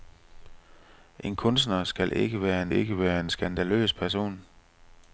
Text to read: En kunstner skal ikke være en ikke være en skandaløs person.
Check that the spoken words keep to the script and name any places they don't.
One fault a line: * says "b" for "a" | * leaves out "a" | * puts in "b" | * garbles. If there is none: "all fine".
all fine